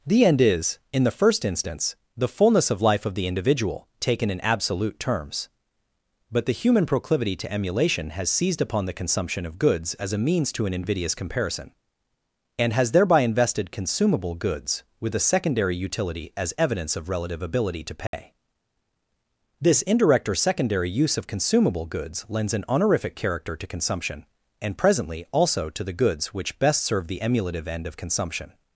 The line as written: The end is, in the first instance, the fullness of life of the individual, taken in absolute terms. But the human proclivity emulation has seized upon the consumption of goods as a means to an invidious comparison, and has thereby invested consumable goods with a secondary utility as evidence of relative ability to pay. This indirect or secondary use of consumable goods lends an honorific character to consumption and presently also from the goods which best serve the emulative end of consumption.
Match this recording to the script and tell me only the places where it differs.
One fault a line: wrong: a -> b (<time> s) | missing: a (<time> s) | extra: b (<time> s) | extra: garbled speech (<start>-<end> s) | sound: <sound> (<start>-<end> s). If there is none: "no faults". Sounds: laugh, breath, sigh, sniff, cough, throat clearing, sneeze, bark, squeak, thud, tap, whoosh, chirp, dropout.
extra: to (7.3 s)
sound: dropout (18.1-18.1 s)
wrong: from -> to (25.7 s)